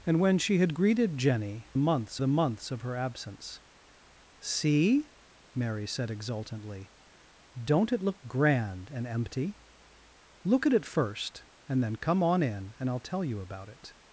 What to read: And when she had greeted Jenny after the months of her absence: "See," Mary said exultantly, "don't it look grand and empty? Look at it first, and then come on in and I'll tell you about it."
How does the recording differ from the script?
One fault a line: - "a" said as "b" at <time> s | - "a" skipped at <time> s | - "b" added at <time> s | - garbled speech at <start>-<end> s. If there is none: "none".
- "after" said as "months" at 1.8 s